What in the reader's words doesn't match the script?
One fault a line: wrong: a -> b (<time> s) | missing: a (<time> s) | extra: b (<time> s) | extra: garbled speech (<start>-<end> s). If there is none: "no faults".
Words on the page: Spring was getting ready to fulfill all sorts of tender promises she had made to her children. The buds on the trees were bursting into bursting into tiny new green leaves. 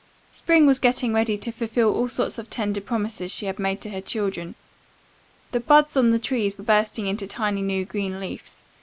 missing: bursting into (7.3 s)